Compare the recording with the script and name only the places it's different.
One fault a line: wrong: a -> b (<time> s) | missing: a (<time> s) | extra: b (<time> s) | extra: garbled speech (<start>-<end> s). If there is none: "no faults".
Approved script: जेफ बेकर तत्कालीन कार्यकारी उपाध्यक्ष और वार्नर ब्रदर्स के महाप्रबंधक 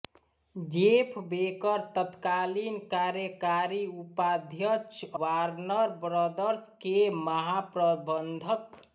missing: और (5.0 s)